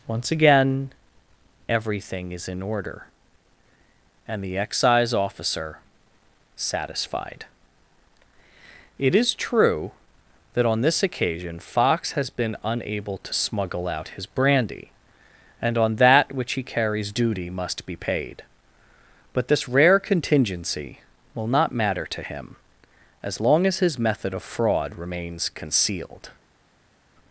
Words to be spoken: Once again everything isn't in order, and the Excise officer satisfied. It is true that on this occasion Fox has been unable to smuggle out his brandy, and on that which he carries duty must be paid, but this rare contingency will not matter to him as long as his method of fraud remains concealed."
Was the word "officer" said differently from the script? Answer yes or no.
no